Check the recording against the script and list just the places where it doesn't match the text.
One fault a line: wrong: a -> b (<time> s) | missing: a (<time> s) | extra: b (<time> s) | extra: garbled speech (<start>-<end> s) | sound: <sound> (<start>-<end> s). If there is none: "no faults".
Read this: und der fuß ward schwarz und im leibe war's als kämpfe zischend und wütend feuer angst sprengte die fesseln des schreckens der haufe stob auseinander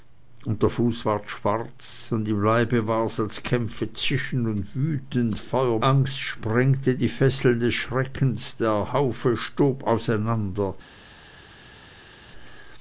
no faults